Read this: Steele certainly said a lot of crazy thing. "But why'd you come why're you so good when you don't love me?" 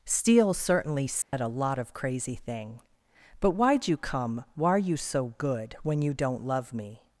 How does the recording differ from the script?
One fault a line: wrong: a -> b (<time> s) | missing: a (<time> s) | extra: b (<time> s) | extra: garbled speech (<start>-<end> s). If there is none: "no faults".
no faults